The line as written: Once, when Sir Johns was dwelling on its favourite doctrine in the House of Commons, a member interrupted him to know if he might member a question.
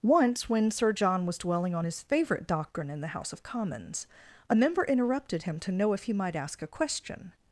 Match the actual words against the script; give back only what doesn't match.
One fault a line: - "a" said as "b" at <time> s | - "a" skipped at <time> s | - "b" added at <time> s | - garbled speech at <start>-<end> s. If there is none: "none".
- "Johns" said as "John" at 0.9 s
- "its" said as "his" at 1.8 s
- "member" said as "ask" at 6.4 s